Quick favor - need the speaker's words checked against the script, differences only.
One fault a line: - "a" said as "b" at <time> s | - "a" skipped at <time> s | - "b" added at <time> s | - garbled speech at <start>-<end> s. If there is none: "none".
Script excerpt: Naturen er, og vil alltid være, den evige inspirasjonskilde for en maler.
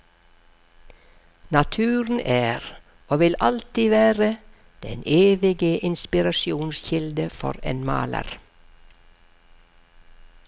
none